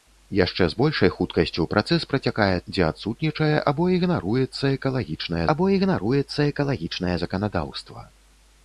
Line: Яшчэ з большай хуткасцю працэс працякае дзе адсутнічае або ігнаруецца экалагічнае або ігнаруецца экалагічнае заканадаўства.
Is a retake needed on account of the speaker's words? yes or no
no